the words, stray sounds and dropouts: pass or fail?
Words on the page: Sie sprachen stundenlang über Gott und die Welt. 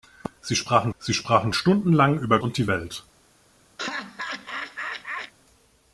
fail